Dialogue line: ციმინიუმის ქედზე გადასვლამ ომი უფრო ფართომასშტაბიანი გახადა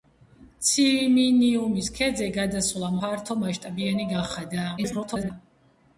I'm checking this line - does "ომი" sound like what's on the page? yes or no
no